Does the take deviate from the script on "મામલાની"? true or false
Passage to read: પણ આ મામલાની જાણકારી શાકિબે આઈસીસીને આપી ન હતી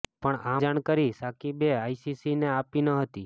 true